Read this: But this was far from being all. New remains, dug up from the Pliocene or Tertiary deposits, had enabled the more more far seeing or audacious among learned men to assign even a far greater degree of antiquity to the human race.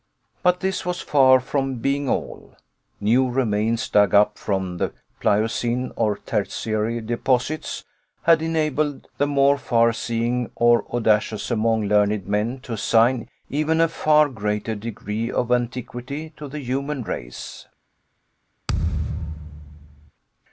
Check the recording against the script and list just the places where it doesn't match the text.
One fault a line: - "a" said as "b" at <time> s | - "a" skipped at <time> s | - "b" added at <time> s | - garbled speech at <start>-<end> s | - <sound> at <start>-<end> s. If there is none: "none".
- "more" skipped at 9.6 s
- thud at 18.7-20.1 s